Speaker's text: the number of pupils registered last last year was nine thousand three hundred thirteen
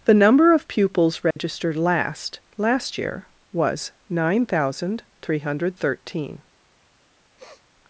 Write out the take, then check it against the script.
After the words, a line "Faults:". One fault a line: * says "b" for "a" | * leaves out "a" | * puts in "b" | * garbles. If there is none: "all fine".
the number of pupils registered last last year was nine thousand three hundred thirteen
Faults:
all fine